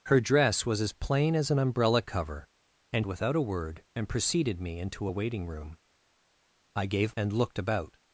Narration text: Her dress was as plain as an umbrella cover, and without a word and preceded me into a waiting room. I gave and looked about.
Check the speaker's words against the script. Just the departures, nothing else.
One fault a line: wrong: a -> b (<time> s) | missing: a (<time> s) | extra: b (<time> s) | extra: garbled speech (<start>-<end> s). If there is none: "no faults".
no faults